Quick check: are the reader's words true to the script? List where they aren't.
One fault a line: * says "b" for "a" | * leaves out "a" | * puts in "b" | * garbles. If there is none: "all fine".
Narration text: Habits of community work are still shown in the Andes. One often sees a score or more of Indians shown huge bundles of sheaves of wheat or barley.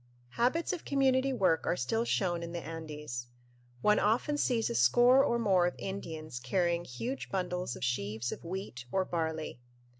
* says "carrying" for "shown"